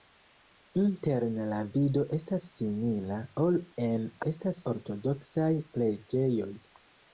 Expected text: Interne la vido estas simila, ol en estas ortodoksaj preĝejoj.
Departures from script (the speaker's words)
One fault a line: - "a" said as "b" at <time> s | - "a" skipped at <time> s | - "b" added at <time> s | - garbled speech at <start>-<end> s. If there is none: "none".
none